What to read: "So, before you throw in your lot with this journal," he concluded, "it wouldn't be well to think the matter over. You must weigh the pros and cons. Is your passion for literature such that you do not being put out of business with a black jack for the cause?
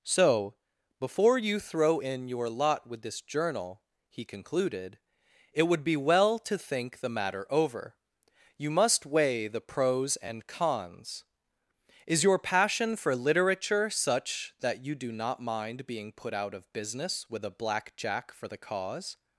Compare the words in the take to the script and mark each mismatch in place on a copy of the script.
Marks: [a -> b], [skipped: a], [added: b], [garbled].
"So, before you throw in your lot with this journal," he concluded, "it [wouldn't -> would] be well to think the matter over. You must weigh the pros and cons. Is your passion for literature such that you do not [added: mind] being put out of business with a black jack for the cause?